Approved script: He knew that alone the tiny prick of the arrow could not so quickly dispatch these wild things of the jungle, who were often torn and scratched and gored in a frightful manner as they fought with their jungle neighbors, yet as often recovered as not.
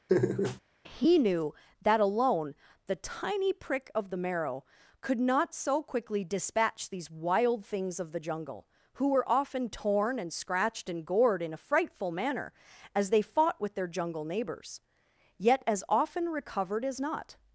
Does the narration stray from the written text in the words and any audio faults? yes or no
yes